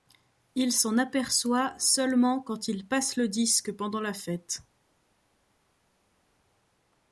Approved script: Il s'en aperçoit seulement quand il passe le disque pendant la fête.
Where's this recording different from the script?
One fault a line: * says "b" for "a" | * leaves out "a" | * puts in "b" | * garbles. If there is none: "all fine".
all fine